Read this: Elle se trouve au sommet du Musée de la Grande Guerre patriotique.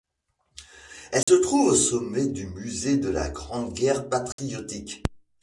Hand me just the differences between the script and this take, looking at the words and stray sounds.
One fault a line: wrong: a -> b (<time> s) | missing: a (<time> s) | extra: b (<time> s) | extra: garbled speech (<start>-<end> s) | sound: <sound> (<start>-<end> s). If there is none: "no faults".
sound: dropout (1.2-1.3 s)
sound: dropout (4.3-4.4 s)